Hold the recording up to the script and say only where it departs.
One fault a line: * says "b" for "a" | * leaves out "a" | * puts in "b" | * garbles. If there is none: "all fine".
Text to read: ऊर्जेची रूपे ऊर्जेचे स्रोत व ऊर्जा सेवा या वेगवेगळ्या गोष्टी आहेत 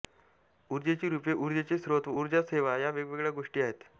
all fine